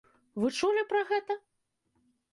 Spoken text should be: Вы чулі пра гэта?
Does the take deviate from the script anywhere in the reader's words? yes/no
no